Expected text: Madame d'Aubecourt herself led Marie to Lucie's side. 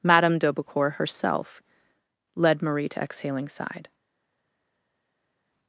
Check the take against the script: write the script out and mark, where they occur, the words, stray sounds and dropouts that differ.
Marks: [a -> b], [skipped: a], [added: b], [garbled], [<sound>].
Madame d'Aubecourt herself led Marie to [Lucie's -> Exhaling] side.